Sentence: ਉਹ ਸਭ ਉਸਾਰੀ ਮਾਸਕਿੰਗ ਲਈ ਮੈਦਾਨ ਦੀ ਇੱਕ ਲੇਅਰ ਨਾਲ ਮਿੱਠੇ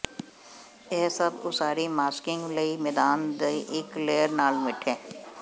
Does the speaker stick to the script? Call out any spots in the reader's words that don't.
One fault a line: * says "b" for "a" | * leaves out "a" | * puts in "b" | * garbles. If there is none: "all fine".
* says "ਇਹ" for "ਉਹ"